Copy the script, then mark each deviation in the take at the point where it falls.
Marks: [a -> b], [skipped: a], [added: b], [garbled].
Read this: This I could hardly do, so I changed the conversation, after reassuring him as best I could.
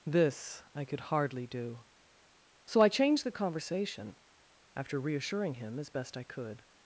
This I could hardly do, so I changed the conversation, after reassuring him as best I could.